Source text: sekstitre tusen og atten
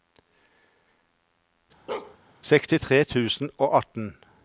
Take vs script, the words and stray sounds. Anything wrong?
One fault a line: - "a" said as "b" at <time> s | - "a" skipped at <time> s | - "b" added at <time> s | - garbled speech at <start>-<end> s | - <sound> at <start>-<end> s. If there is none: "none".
- bark at 1.9-2.2 s